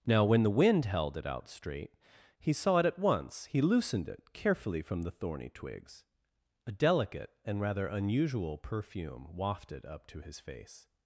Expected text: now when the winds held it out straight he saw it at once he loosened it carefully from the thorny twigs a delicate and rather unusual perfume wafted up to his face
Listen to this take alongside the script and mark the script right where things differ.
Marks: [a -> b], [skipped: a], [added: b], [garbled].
now when the [winds -> wind] held it out straight he saw it at once he loosened it carefully from the thorny twigs a delicate and rather unusual perfume wafted up to his face